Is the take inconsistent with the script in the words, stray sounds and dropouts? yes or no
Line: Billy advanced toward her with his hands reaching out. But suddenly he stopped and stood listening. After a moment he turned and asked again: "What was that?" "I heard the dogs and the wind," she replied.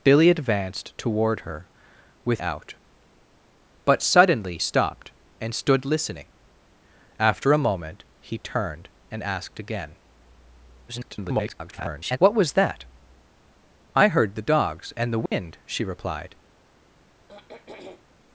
yes